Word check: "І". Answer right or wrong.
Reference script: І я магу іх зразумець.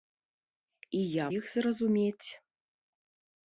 right